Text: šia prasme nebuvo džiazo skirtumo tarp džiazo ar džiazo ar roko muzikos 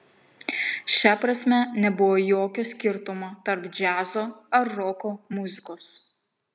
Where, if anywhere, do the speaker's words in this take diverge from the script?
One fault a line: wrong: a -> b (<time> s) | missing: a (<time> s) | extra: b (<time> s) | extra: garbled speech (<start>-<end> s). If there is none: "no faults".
wrong: džiazo -> jokio (2.3 s)
missing: džiazo ar (4.7 s)